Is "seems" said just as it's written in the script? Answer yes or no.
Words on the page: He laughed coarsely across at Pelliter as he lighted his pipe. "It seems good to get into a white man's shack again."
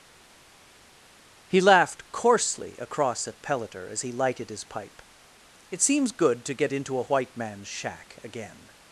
yes